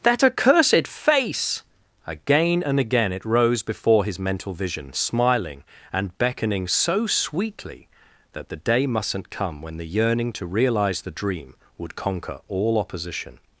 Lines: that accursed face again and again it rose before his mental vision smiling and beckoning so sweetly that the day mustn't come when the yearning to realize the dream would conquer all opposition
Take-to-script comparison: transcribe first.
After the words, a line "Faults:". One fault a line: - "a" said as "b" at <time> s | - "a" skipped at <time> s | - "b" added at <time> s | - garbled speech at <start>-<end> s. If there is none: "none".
that accursed face again and again it rose before his mental vision smiling and beckoning so sweetly that the day mustn't come when the yearning to realize the dream would conquer all opposition
Faults:
none